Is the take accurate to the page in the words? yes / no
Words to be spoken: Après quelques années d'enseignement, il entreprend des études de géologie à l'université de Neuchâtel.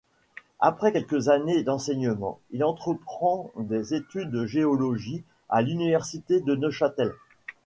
yes